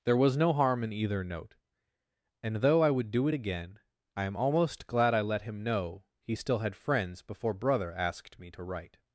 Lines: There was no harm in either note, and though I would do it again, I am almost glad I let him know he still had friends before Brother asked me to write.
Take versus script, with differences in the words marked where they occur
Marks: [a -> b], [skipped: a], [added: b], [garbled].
There was no harm in either note, and though I would do it again, I am almost glad I let him know he still had friends before Brother asked me to write.